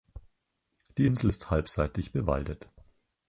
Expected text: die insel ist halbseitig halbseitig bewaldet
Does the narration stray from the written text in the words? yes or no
yes